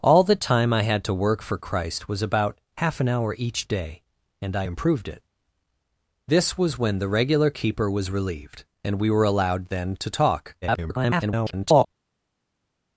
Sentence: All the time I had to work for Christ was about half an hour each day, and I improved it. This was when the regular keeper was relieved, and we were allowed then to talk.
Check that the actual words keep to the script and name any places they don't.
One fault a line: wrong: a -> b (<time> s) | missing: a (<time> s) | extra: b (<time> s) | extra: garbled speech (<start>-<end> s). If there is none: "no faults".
extra: garbled speech (10.6-11.9 s)